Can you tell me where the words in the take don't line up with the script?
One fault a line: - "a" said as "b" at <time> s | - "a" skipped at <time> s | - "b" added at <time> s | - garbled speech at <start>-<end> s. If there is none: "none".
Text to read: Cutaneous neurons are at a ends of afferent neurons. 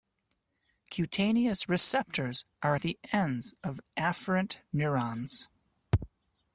- "neurons" said as "receptors" at 1.7 s
- "a" said as "the" at 2.8 s